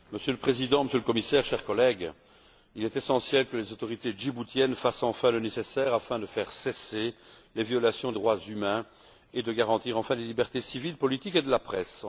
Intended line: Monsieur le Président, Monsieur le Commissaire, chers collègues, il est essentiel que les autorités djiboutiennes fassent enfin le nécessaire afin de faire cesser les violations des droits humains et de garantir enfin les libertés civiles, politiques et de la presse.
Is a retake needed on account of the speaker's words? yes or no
yes